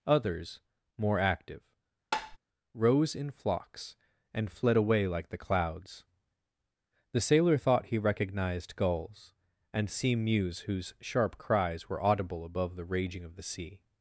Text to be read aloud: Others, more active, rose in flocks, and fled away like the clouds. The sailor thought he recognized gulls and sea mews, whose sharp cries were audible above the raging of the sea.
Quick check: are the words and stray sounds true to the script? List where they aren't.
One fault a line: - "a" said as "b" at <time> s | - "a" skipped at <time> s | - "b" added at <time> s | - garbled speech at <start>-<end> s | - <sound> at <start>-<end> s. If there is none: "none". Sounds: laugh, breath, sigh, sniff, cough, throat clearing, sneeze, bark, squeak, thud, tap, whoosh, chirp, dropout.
- tap at 2.1-2.4 s